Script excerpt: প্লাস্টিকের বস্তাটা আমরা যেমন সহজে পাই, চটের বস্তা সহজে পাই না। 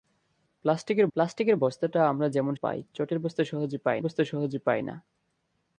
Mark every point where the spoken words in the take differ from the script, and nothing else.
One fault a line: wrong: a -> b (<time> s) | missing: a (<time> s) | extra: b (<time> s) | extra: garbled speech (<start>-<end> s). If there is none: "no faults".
extra: প্লাস্টিকের (1.2 s)
extra: পাই চটের বস্তা (2.5 s)
missing: চটের (4.0 s)